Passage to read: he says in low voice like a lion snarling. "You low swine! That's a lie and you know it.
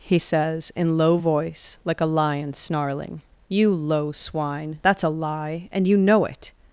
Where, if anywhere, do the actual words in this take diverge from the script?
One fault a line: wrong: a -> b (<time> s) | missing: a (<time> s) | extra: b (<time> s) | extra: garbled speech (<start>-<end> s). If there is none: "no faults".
no faults